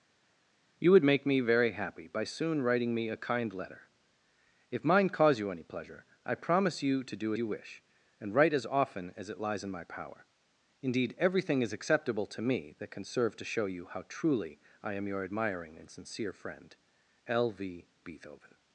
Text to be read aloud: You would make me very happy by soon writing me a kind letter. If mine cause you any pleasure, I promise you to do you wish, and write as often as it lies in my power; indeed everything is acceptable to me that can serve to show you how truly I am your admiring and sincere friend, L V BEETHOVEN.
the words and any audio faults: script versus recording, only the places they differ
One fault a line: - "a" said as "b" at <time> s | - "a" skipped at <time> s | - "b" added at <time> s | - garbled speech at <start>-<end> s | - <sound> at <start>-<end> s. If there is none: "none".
none